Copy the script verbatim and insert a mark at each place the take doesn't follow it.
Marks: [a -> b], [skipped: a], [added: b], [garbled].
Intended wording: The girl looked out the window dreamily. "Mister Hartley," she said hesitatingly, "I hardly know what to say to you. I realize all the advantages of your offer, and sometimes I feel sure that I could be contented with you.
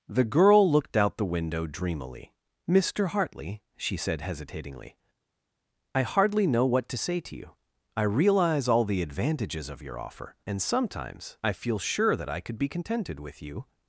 The girl looked out the window dreamily. "Mister Hartley," she said hesitatingly, "I hardly know what to say to you. I realize all the advantages of your offer, and sometimes I feel sure that I could be contented with you.